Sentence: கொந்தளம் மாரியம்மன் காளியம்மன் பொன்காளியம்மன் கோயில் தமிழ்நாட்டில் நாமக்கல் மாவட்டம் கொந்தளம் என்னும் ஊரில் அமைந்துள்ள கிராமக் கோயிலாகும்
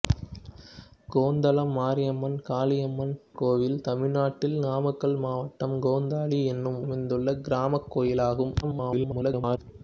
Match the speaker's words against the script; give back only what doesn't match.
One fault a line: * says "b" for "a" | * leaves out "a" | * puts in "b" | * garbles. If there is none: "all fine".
* leaves out "பொன்காளியம்மன்"
* leaves out "ஊரில்"
* garbles